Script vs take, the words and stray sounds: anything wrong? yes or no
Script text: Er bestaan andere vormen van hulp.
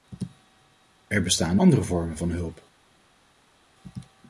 no